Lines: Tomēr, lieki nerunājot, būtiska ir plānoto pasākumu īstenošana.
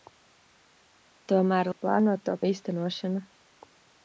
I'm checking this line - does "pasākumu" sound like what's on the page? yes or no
no